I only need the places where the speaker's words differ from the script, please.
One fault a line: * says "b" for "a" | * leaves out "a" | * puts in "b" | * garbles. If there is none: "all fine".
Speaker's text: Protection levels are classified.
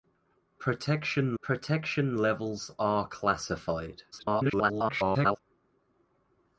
* puts in "protection"
* garbles